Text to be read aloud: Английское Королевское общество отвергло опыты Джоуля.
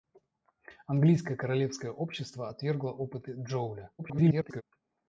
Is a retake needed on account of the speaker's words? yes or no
yes